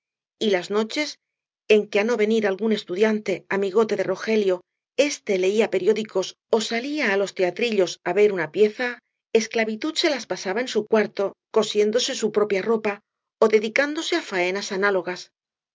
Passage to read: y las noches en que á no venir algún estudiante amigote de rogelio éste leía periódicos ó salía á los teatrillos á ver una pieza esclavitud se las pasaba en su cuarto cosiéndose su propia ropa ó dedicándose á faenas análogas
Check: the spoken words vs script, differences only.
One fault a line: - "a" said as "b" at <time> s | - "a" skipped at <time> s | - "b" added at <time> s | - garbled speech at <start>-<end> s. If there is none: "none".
none